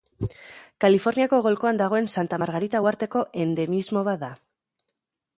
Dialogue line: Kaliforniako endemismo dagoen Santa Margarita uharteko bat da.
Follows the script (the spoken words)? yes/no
no